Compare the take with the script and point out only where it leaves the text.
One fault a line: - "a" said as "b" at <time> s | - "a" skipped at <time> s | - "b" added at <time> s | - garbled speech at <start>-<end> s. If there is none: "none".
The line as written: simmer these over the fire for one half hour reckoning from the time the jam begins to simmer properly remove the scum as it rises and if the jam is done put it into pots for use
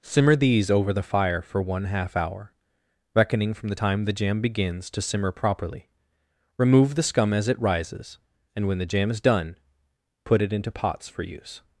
- "if" said as "when" at 8.7 s